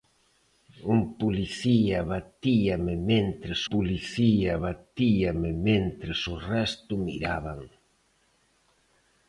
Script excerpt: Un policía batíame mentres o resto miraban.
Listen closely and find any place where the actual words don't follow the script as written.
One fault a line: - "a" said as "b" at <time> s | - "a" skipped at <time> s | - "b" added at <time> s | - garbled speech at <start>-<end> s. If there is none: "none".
- "policía batíame mentres" added at 3.7 s